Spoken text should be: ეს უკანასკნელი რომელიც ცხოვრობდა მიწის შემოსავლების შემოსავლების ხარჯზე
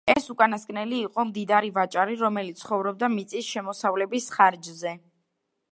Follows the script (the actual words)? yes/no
no